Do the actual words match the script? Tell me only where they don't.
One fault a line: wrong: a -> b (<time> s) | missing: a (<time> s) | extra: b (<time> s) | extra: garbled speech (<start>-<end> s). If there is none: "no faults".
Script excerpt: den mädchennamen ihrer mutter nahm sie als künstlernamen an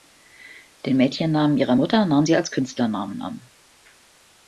no faults